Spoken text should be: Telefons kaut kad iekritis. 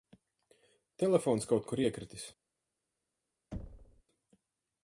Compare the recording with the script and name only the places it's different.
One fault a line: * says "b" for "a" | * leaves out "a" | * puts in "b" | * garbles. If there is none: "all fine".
* says "kur" for "kad"